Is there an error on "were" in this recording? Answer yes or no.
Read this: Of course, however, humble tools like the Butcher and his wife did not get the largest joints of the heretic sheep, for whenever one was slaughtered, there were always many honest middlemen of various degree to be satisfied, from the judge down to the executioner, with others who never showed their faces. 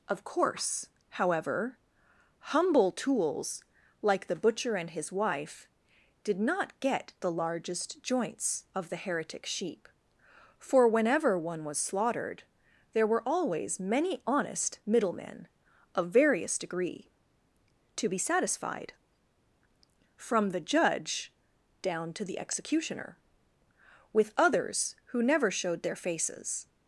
no